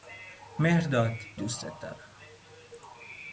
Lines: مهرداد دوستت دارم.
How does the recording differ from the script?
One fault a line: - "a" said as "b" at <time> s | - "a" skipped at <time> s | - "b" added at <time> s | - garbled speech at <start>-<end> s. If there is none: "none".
none